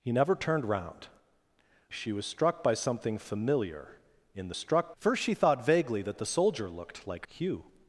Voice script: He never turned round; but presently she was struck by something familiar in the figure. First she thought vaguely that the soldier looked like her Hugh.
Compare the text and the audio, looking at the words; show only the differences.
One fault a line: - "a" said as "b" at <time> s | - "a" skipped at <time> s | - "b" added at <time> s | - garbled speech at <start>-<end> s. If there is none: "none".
- "but presently" skipped at 1.1 s
- "figure" said as "struck" at 4.5 s
- "her" skipped at 7.3 s